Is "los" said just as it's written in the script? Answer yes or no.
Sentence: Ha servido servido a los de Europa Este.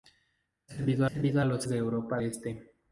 yes